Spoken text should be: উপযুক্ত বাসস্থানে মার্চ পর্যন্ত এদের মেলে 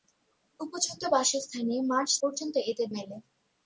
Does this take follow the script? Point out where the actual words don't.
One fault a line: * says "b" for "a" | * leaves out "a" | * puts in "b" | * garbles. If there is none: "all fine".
all fine